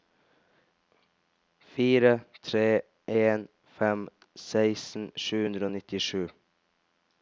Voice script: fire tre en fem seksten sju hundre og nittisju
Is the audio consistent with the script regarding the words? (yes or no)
yes